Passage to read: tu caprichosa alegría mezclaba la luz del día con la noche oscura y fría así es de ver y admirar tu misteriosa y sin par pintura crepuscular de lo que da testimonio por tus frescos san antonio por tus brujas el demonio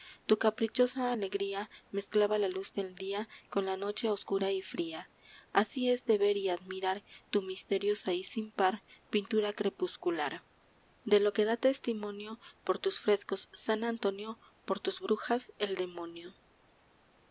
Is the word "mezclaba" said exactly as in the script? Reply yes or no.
yes